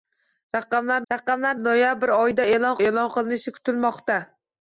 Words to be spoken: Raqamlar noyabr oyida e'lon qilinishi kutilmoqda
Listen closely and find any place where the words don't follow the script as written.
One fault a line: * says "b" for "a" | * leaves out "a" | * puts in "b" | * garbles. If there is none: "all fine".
* puts in "raqamlar"
* puts in "e'lon"